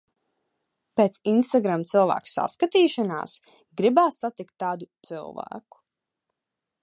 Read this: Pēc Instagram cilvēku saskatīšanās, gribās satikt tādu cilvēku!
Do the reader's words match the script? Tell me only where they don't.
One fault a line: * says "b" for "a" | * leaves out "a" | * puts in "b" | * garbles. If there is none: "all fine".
all fine